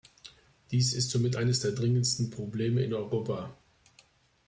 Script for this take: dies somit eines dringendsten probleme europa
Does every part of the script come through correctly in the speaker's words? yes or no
no